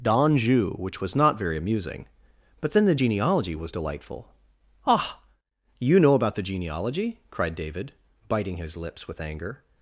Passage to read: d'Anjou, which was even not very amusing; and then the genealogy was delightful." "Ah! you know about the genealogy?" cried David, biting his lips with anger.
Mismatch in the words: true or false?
true